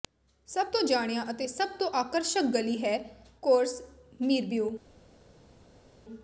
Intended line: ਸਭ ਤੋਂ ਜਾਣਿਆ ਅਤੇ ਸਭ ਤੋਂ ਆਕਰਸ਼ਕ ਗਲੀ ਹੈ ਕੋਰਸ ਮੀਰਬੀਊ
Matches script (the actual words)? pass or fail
pass